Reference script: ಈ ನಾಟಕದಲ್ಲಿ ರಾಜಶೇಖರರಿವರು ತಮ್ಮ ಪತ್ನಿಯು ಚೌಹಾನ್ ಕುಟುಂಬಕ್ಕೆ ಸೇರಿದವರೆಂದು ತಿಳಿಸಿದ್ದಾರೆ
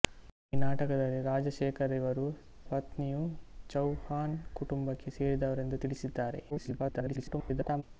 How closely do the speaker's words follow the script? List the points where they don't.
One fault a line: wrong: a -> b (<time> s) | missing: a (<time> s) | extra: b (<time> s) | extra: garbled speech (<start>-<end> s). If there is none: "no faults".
missing: ತಮ್ಮ (2.2 s)
extra: garbled speech (6.5-7.8 s)